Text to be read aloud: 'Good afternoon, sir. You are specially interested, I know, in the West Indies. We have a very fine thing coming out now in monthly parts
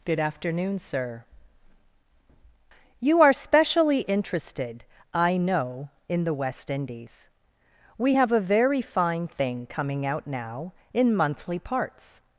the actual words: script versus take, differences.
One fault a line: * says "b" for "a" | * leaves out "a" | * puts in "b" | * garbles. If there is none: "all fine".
all fine